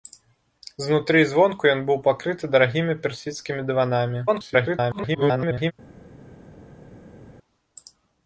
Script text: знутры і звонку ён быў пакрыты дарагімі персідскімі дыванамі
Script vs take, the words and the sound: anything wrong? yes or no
yes